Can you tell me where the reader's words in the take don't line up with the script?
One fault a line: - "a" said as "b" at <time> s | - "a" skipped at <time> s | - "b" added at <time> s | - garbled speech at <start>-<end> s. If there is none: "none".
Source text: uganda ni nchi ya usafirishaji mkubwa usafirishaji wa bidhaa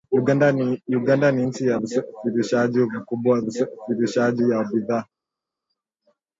none